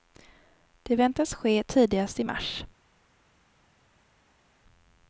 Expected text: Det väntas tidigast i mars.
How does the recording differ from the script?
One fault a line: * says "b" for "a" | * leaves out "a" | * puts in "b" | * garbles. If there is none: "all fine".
* puts in "ske"